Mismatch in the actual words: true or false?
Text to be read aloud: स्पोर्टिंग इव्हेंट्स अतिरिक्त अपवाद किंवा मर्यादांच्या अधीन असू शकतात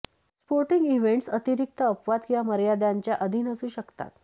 false